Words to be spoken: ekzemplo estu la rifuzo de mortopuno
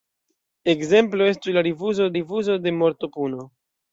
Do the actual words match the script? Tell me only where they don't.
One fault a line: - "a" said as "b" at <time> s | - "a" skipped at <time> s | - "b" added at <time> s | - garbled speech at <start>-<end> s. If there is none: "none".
- "rifuzo" added at 2.2 s